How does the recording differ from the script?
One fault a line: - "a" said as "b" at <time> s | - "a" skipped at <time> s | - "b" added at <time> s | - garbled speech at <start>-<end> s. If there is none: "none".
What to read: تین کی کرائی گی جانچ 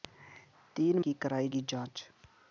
none